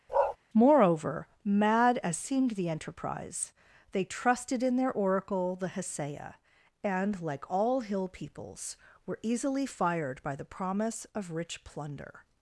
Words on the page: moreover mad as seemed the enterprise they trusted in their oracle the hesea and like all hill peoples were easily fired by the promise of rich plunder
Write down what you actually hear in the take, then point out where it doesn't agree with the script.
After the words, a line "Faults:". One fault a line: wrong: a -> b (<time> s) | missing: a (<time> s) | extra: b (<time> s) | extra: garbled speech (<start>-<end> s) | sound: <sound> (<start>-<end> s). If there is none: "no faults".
moreover mad as seemed the enterprise they trusted in their oracle the hesea and like all hill peoples were easily fired by the promise of rich plunder
Faults:
sound: bark (0.1-0.4 s)